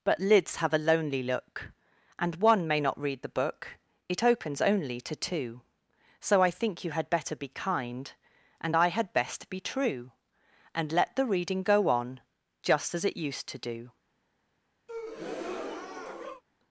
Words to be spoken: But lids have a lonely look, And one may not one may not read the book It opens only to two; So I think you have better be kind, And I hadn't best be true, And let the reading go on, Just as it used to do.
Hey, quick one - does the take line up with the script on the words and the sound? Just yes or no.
no